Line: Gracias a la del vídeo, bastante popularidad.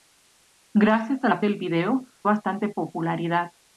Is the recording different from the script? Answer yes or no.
no